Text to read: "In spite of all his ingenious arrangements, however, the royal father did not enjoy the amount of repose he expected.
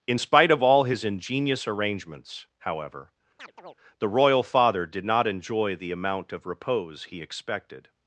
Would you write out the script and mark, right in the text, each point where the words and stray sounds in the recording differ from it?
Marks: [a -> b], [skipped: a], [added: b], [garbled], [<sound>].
"In spite of all his ingenious arrangements, however, [chirp] the royal father did not enjoy the amount of repose he expected.